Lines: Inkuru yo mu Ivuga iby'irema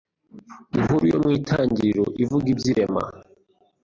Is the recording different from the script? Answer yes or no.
yes